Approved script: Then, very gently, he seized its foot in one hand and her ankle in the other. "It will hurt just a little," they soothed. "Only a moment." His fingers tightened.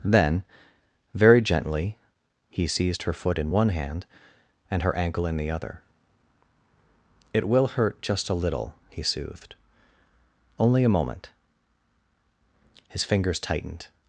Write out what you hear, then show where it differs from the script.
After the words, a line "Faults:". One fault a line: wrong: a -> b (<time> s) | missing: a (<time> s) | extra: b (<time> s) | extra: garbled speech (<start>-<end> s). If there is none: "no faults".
Then, very gently, he seized her foot in one hand and her ankle in the other. "It will hurt just a little," he soothed. "Only a moment." His fingers tightened.
Faults:
wrong: its -> her (3.0 s)
wrong: they -> he (8.9 s)